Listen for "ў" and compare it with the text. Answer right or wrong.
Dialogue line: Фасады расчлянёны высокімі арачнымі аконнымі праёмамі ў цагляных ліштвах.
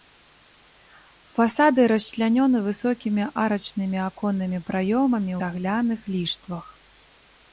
wrong